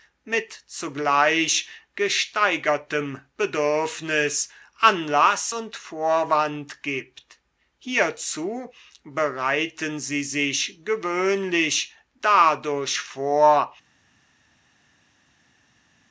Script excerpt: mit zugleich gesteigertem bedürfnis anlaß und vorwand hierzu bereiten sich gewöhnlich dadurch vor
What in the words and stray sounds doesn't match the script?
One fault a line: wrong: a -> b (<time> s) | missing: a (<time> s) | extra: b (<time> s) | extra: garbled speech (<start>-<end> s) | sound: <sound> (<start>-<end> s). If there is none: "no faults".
extra: gibt (6.8 s)
extra: sie (10.0 s)